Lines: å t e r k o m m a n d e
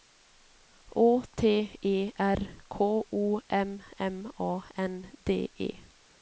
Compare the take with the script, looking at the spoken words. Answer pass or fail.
pass